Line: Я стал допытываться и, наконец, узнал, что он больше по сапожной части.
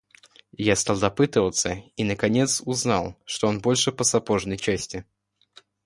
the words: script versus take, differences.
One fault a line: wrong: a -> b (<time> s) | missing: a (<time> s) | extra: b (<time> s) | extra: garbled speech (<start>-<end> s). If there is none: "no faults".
no faults